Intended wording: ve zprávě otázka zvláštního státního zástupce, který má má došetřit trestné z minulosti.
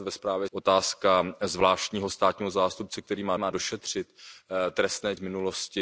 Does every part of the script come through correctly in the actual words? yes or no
yes